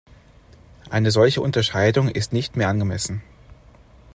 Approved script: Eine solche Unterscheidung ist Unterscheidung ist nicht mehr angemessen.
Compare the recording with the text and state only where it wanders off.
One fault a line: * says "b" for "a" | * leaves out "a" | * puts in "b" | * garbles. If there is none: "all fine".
* leaves out "Unterscheidung ist"